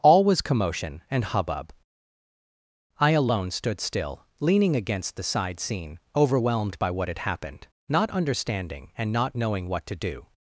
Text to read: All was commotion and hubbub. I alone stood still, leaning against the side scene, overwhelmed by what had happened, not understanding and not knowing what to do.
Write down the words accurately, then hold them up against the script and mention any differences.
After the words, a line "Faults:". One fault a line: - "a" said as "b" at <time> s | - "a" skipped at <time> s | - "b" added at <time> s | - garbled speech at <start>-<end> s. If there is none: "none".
All was commotion and hubbub. I alone stood still, leaning against the side scene, overwhelmed by what had happened, not understanding and not knowing what to do.
Faults:
none